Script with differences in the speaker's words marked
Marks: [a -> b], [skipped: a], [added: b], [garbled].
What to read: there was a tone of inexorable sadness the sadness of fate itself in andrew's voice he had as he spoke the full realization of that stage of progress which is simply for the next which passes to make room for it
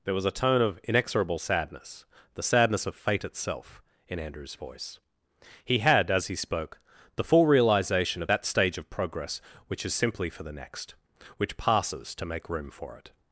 there was a tone of inexorable sadness the sadness of fate itself in andrew's voice he had as he spoke the full realization of that stage of progress which is simply for the next which passes to make room for it